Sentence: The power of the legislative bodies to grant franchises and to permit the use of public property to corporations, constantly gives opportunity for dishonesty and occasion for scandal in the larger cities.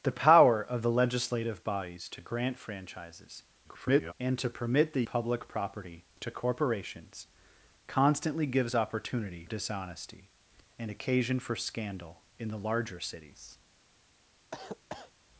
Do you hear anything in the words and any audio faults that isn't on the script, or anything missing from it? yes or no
yes